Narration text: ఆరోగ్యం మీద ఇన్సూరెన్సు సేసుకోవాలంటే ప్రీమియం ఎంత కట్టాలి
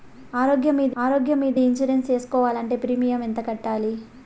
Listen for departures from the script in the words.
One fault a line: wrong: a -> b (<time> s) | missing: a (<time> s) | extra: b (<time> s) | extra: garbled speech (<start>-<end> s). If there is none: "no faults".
extra: ఆరోగ్యం మీద (1.0 s)